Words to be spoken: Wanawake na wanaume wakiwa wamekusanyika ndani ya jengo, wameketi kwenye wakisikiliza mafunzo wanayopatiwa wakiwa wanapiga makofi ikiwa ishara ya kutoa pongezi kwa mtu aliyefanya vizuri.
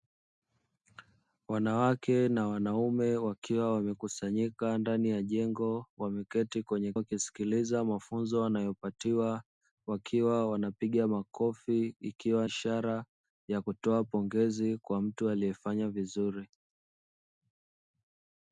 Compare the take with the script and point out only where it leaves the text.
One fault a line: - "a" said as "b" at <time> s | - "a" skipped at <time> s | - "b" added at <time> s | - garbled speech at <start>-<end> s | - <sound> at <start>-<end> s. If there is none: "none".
none